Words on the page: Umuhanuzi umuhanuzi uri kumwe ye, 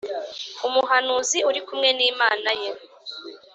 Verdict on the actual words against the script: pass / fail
fail